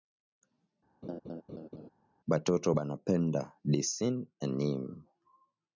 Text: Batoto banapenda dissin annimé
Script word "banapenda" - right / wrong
right